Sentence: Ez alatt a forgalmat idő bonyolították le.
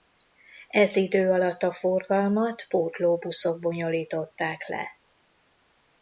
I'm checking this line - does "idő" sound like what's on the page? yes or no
no